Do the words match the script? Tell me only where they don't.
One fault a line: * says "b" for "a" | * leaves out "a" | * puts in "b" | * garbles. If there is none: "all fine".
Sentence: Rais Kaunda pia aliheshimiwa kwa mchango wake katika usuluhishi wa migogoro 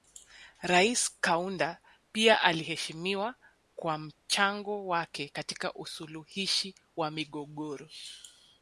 all fine